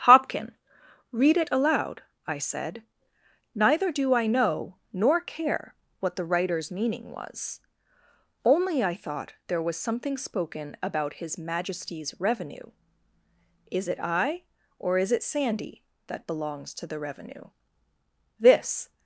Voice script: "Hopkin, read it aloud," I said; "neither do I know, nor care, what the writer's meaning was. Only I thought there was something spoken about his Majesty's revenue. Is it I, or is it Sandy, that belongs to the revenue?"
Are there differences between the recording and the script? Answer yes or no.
yes